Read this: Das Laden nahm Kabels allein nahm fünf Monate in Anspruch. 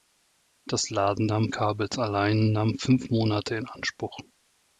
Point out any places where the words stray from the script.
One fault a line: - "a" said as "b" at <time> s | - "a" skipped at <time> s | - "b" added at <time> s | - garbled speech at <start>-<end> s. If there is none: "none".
none